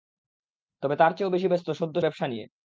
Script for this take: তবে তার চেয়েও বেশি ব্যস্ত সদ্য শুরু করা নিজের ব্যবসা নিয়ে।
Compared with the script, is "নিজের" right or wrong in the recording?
wrong